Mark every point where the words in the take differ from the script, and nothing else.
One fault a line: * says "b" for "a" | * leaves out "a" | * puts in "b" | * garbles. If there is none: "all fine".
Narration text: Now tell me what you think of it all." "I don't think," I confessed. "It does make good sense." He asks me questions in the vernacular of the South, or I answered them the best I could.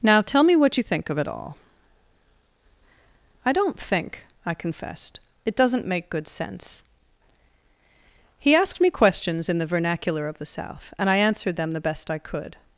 * says "doesn't" for "does"
* says "asked" for "asks"
* says "and" for "or"